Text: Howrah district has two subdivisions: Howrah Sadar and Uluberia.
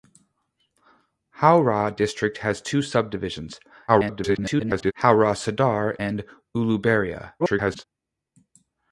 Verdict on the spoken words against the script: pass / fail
fail